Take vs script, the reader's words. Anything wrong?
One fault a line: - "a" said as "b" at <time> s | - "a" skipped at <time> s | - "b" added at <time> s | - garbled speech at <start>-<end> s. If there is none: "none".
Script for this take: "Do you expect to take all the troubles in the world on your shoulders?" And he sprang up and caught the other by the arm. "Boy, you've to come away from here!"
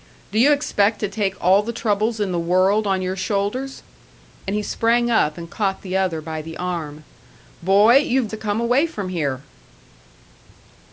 none